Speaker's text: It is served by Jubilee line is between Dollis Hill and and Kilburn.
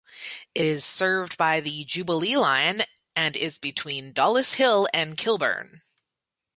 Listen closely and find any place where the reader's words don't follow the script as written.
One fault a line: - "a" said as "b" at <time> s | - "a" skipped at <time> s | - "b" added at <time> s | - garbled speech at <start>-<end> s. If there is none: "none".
- "the" added at 1.6 s
- "and" added at 3.1 s
- "and" skipped at 5.2 s